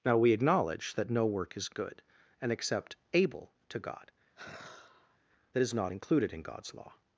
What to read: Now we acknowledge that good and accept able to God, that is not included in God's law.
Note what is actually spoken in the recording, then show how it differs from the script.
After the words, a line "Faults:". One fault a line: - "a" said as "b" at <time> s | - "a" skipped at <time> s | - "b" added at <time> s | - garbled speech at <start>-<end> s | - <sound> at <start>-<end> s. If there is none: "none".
Now we acknowledge that no work is good and accept able to God, that is not included in God's law.
Faults:
- "no work is" added at 1.1 s
- sigh at 4.4-5.2 s